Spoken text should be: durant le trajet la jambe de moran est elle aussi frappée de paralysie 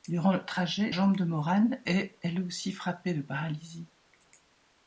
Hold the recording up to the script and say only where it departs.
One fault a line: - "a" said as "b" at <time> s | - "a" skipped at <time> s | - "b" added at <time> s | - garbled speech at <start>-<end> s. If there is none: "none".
- "la" skipped at 0.9 s